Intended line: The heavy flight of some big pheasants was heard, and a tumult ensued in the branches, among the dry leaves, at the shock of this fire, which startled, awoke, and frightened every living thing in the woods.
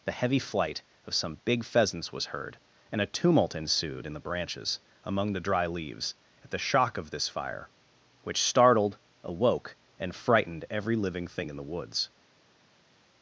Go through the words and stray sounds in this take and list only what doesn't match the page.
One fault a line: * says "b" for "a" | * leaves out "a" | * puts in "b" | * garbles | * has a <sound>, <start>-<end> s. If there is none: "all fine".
all fine